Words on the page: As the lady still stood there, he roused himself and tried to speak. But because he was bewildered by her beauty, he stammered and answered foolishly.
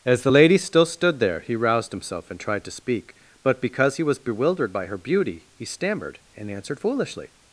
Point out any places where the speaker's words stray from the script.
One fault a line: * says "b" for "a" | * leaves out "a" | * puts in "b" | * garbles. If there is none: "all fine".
all fine